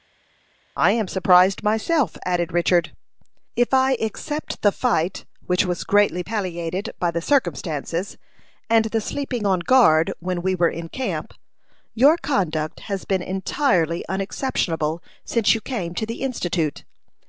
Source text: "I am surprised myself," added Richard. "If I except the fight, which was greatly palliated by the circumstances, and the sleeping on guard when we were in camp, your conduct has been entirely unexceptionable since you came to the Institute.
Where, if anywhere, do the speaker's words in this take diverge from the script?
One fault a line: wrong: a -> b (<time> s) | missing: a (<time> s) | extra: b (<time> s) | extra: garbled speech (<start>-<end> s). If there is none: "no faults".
no faults